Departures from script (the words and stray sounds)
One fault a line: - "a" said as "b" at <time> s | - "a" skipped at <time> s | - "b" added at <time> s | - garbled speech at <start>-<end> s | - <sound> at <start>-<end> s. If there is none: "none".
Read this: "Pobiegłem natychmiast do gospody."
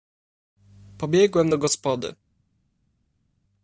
- "natychmiast" skipped at 1.5 s